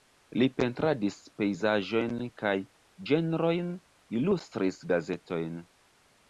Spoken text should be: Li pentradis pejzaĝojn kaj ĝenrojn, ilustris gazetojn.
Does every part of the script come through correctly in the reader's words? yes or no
yes